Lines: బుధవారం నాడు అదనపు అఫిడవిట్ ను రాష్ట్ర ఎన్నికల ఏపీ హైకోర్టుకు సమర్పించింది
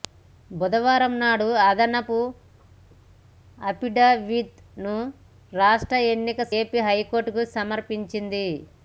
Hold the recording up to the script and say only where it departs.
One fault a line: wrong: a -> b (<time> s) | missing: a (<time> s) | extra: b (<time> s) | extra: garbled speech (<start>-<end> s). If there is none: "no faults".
no faults